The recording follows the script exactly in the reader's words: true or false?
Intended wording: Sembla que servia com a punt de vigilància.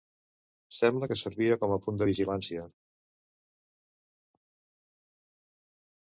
true